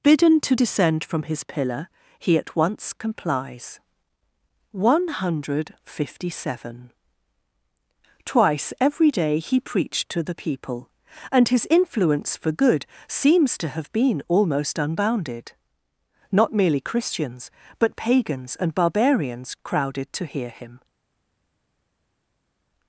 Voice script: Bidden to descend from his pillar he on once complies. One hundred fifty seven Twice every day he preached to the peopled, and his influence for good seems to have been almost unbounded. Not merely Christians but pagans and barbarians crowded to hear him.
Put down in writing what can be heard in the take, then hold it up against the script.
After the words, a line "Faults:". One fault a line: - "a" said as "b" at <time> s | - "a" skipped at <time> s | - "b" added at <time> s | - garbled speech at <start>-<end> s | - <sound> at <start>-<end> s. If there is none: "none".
Bidden to descend from his pillar he at once complies. One hundred fifty seven Twice every day he preached to the people, and his influence for good seems to have been almost unbounded. Not merely Christians but pagans and barbarians crowded to hear him.
Faults:
- "on" said as "at" at 2.4 s
- "peopled" said as "people" at 10.4 s